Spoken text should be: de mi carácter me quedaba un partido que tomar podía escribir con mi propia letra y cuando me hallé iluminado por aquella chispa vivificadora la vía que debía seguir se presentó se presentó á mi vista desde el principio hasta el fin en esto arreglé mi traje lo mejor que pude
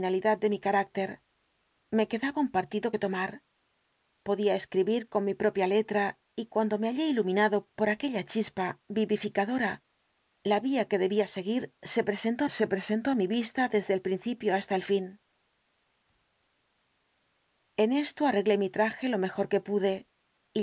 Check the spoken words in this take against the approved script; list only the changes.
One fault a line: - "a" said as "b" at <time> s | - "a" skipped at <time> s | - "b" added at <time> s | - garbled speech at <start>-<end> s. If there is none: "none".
none